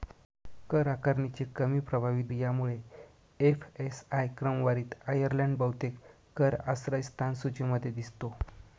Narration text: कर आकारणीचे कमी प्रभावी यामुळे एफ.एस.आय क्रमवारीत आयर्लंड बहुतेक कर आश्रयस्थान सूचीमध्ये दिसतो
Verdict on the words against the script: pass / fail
pass